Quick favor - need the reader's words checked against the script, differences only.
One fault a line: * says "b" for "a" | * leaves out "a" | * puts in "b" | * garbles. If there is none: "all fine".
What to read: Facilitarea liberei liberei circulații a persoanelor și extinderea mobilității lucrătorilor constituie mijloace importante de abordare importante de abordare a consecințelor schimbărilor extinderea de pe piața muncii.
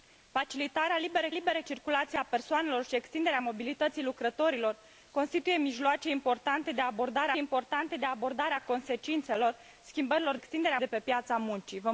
all fine